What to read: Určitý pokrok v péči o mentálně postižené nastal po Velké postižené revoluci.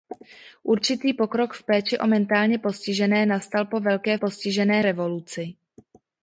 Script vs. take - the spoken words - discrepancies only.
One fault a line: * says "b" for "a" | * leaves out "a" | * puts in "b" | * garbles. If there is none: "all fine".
all fine